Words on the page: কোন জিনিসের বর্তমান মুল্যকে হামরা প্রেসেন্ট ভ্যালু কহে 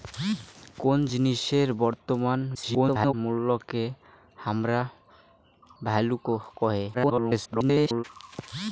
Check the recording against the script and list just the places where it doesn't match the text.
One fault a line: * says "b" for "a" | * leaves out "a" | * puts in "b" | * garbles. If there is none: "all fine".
* garbles
* leaves out "প্রেসেন্ট"
* garbles